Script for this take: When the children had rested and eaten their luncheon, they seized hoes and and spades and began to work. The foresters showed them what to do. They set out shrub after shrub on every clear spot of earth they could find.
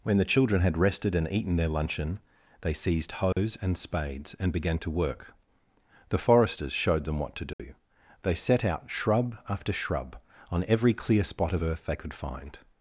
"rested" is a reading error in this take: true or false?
false